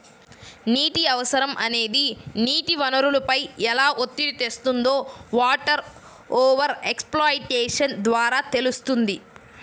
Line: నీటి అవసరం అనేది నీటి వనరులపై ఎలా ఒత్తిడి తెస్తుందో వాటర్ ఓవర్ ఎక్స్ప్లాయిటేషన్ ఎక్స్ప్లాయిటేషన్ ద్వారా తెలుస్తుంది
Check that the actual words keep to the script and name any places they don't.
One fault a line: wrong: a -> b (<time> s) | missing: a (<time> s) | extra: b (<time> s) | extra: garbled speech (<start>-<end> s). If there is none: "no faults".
missing: ఎక్స్ప్లాయిటేషన్ (8.0 s)